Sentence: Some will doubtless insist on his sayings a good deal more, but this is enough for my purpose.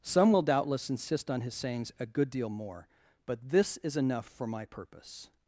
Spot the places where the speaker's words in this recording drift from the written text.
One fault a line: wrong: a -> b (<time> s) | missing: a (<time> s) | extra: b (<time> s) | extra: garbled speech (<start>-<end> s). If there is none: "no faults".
no faults